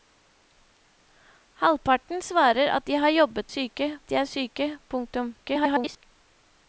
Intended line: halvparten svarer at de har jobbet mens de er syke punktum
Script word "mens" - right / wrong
wrong